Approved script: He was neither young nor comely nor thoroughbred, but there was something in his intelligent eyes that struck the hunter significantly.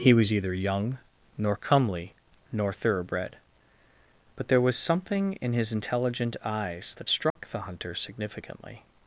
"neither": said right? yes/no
no